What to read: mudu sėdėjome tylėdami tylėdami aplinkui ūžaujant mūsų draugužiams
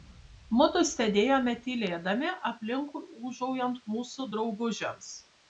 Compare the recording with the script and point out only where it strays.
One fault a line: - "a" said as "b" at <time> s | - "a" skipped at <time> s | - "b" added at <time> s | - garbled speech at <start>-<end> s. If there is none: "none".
- "tylėdami" skipped at 2.3 s